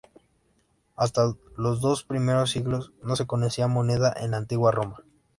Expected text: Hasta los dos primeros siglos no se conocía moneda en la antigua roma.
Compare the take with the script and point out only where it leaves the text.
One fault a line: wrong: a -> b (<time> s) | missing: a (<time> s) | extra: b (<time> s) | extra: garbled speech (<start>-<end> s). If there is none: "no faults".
no faults